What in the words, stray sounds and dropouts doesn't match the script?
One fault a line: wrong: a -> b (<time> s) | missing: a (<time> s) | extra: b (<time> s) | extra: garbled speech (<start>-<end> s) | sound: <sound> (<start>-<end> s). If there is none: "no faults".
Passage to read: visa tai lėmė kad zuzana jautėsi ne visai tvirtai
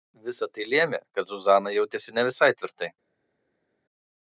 no faults